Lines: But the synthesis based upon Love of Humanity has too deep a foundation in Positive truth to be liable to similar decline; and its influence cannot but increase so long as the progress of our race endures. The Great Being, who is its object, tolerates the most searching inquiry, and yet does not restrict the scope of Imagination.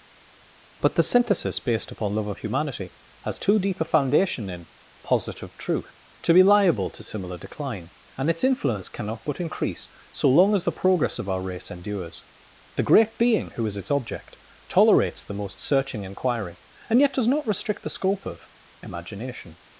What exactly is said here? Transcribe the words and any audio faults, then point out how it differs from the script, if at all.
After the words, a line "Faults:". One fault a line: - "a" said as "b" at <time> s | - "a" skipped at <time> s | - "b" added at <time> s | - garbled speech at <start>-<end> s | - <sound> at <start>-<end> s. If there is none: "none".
But the synthesis based upon Love of Humanity has too deep a foundation in Positive truth to be liable to similar decline; and its influence cannot but increase so long as the progress of our race endures. The Great Being, who is its object, tolerates the most searching inquiry, and yet does not restrict the scope of Imagination.
Faults:
none